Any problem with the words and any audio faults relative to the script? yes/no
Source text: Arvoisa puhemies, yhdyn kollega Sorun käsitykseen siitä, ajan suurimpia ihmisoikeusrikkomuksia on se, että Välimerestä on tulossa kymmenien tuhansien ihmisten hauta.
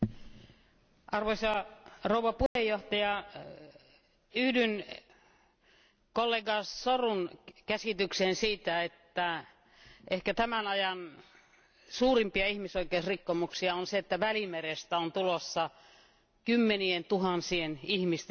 yes